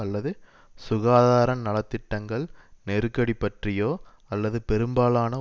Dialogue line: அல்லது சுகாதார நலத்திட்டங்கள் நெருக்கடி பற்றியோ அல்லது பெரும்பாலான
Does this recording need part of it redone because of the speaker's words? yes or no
no